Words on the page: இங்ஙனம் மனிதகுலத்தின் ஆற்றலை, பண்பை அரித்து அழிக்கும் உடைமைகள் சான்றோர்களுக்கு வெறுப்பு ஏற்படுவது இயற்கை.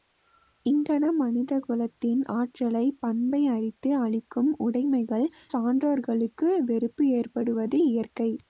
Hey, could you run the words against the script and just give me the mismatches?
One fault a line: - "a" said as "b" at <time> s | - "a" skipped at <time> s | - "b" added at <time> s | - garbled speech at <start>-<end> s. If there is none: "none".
none